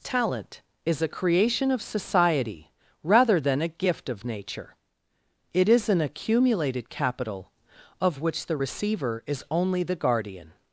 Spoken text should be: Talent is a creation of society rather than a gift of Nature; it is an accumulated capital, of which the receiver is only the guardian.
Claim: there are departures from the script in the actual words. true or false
false